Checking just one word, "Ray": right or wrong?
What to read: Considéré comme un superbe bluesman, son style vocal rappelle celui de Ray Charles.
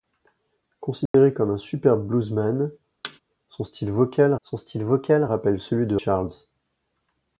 wrong